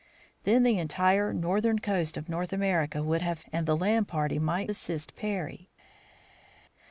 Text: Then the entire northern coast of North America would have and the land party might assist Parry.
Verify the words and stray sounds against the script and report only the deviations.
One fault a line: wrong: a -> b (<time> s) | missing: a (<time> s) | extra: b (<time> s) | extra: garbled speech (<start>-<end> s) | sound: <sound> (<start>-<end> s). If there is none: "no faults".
no faults